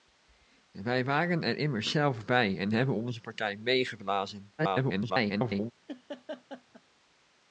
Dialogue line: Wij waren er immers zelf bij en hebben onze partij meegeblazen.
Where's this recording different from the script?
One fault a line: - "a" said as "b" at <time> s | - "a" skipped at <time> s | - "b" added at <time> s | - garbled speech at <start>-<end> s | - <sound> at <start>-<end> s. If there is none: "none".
- garbled speech at 4.6-5.7 s
- laugh at 5.9-6.8 s